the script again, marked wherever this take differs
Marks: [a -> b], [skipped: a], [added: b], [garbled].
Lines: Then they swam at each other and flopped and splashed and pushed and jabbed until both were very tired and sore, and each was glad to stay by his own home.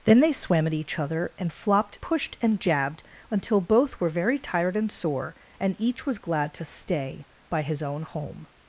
Then they swam at each other and flopped [skipped: and splashed and] pushed and jabbed until both were very tired and sore, and each was glad to stay by his own home.